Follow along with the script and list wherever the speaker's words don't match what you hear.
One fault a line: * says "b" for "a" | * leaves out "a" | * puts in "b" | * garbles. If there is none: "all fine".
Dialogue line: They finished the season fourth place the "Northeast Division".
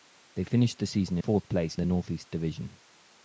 all fine